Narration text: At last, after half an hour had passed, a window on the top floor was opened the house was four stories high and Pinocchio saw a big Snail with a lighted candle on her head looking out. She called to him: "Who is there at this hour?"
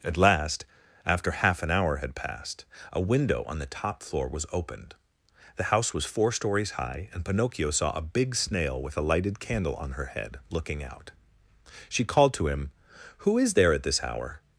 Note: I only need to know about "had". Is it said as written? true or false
true